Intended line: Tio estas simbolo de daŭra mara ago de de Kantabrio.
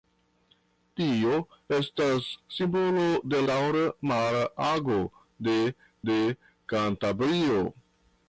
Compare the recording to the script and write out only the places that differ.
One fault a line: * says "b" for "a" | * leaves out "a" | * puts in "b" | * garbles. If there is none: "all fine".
all fine